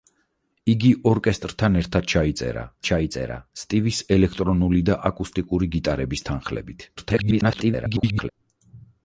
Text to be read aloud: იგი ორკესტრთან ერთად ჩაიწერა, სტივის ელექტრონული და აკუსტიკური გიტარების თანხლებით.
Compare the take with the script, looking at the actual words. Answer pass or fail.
fail